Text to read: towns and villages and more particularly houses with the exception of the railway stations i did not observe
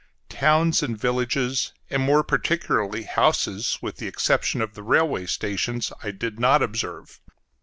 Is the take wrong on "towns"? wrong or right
right